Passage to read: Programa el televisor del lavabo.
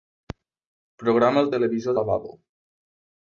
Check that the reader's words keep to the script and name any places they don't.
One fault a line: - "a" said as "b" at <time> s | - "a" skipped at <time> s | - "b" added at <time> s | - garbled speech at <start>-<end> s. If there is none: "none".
- "del" skipped at 2.0 s